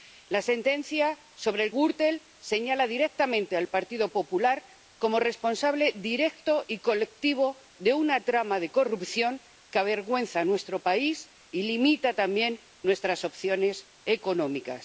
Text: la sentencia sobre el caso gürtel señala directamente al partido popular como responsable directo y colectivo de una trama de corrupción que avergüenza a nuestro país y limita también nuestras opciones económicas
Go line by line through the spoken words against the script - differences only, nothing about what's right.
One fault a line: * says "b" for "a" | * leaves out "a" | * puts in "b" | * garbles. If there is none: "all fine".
* leaves out "caso"